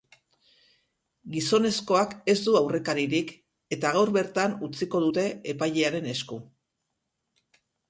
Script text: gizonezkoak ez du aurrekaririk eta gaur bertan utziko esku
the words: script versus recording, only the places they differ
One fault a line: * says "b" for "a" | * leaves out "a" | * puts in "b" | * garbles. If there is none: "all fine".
* puts in "dute epailearen"